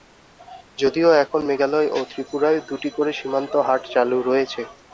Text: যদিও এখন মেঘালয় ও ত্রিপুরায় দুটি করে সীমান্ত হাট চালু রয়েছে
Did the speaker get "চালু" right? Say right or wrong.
right